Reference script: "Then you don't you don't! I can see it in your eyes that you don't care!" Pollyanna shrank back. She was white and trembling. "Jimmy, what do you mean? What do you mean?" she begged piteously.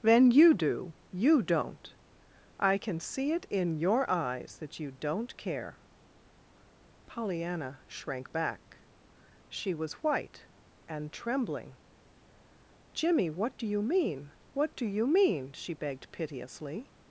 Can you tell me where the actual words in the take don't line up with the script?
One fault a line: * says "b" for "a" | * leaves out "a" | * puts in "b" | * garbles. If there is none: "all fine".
* says "do" for "don't"